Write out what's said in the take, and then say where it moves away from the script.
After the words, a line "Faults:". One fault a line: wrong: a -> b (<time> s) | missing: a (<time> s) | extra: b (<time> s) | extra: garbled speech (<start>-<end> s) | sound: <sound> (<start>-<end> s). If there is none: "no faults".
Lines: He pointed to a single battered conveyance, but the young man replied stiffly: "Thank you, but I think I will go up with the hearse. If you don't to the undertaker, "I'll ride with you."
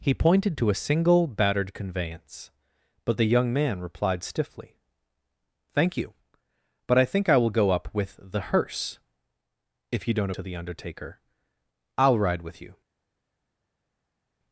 He pointed to a single battered conveyance, but the young man replied stiffly: "Thank you, but I think I will go up with the hearse. If you don't to the undertaker, "I'll ride with you."
Faults:
no faults